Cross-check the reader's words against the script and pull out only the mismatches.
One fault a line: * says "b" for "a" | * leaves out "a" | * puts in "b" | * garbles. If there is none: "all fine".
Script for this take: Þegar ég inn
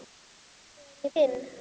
all fine